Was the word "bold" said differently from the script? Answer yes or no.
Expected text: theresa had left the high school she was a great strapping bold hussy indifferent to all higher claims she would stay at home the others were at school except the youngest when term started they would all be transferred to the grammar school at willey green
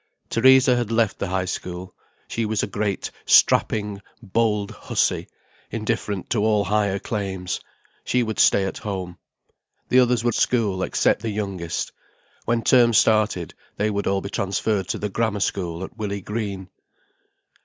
no